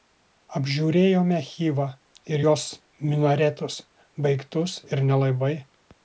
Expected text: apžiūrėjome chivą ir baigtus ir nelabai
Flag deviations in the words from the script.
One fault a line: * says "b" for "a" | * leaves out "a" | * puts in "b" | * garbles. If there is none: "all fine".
* puts in "jos minaretus"